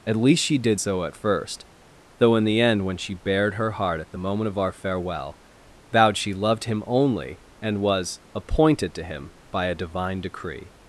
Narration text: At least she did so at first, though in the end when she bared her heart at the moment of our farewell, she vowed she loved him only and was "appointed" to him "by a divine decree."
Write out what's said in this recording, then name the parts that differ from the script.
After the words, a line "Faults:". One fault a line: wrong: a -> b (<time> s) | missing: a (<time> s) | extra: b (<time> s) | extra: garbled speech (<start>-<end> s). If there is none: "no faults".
At least she did so at first, though in the end when she bared her heart at the moment of our farewell, vowed she loved him only and was "appointed" to him "by a divine decree."
Faults:
missing: she (5.4 s)